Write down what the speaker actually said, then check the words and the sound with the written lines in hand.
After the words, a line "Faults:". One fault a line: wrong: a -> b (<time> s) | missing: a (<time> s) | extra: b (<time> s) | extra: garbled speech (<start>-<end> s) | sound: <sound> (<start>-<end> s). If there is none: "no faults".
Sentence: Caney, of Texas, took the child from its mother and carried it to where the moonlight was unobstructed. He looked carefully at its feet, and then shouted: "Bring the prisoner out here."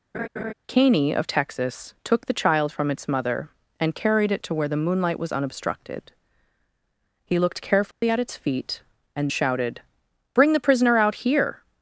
Caney, of Texas, took the child from its mother and carried it to where the moonlight was unobstructed. He looked carefully at its feet, and shouted: "Bring the prisoner out here."
Faults:
sound: laugh (0.1-0.5 s)
sound: dropout (7.9-8.0 s)
missing: then (9.3 s)